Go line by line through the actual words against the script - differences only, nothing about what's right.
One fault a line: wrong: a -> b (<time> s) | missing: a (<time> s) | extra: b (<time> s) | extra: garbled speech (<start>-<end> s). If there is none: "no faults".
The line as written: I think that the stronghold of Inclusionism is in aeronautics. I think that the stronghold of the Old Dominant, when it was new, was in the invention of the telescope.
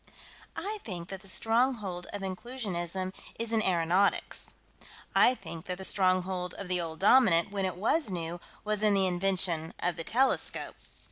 no faults